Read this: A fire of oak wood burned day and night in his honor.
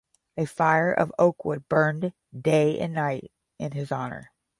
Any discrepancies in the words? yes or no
no